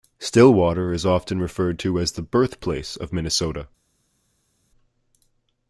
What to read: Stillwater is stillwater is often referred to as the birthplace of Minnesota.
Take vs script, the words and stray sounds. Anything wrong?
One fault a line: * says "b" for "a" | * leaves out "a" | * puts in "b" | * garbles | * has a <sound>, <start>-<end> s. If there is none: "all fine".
* leaves out "stillwater is"